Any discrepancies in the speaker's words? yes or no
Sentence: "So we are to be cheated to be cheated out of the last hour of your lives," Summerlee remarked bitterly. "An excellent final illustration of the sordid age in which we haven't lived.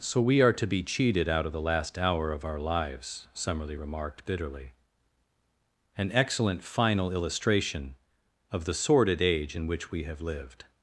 yes